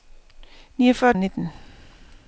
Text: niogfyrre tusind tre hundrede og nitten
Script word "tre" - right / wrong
wrong